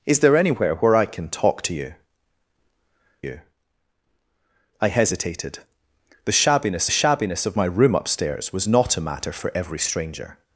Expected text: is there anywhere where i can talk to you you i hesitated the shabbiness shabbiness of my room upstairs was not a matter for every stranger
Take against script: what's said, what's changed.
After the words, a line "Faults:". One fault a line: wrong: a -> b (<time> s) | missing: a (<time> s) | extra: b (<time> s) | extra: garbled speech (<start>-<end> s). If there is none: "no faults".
is there anywhere where i can talk to you you i hesitated the shabbiness shabbiness of my room upstairs was not a matter for every stranger
Faults:
no faults